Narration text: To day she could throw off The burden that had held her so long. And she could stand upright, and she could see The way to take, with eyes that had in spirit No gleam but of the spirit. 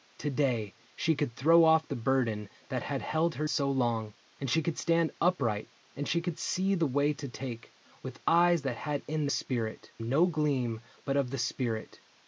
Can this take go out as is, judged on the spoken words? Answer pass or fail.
pass